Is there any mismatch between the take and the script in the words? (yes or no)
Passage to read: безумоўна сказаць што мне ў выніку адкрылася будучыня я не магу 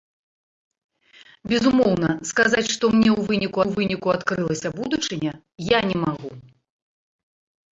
yes